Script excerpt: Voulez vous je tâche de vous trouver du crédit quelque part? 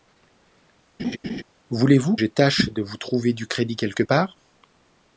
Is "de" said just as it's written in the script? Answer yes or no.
yes